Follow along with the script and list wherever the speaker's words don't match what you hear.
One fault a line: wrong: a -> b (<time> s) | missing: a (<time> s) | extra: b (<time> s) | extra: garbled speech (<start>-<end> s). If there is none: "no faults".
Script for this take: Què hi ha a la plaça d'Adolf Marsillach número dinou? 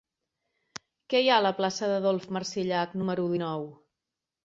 no faults